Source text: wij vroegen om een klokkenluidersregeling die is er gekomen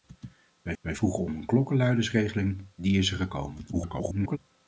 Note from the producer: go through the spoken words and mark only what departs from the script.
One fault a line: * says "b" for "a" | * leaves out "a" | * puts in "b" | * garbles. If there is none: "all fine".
* puts in "wij"
* garbles